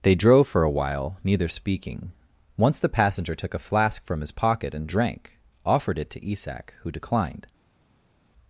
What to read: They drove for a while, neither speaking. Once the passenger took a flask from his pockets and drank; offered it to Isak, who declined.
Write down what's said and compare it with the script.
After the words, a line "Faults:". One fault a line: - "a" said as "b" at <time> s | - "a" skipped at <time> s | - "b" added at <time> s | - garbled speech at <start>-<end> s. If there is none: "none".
They drove for a while, neither speaking. Once the passenger took a flask from his pocket and drank; offered it to Isak, who declined.
Faults:
- "pockets" said as "pocket" at 4.3 s